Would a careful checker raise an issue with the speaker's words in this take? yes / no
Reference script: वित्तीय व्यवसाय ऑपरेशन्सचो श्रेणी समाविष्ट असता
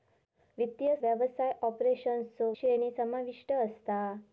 no